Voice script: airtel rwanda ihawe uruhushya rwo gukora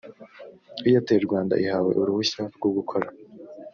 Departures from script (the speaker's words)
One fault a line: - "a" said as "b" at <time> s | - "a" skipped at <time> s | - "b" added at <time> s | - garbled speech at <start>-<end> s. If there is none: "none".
none